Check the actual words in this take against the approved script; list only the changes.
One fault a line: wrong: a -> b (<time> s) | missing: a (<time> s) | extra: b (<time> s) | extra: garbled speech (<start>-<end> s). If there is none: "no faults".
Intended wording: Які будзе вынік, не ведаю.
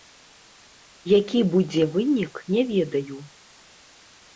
no faults